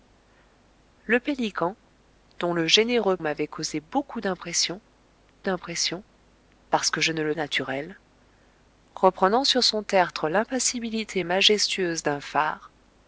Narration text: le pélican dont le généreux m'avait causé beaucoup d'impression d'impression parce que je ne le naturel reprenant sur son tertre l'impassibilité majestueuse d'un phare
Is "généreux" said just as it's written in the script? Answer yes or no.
yes